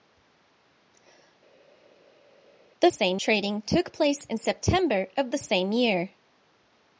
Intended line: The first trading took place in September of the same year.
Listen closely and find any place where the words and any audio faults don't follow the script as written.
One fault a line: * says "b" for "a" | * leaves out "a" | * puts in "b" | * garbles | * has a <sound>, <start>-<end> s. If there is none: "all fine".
* says "same" for "first"